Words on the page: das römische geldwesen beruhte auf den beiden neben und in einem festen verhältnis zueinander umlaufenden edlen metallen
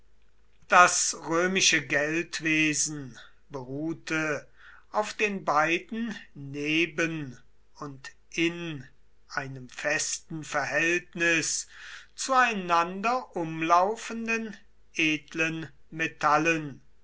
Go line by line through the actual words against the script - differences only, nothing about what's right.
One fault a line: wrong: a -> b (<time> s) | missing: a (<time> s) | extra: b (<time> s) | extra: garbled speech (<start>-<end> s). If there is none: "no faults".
no faults